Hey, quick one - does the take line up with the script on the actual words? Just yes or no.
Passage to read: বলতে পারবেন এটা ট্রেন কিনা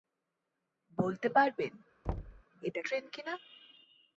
yes